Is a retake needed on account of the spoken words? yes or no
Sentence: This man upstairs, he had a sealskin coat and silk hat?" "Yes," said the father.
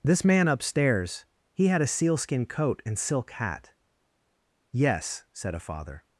yes